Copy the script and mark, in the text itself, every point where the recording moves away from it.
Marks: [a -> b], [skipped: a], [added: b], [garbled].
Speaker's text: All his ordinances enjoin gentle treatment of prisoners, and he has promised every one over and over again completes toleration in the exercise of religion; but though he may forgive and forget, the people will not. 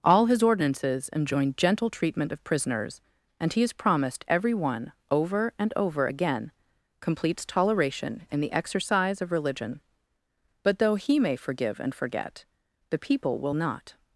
All his ordinances enjoin gentle treatment of prisoners, and he has promised every one over and over again completes toleration in the exercise of religion; but though he may forgive and forget, the people will not.